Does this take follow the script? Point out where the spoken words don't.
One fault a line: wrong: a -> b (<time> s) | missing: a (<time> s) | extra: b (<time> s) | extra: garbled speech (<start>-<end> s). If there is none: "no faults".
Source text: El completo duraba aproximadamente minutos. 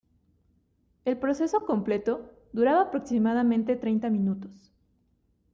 extra: proceso (1.2 s)
extra: treinta (3.8 s)